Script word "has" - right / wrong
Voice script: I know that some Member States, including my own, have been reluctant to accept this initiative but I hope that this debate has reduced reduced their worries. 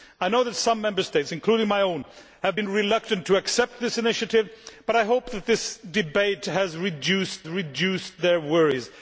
right